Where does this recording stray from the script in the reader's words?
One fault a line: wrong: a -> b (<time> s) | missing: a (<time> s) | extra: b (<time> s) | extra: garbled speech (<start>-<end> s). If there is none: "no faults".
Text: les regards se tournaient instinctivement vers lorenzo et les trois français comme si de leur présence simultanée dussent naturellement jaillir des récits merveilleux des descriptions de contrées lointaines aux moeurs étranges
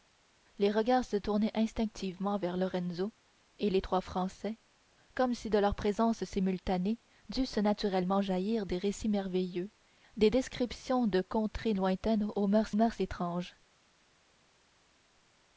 extra: moeurs (12.7 s)